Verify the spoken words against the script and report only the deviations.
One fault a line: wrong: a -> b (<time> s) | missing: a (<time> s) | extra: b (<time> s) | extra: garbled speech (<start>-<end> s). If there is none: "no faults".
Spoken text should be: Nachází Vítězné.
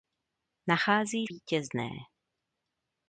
no faults